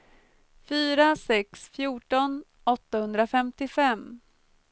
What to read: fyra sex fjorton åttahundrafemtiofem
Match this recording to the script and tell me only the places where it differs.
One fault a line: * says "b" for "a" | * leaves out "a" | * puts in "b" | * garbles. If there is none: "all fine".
all fine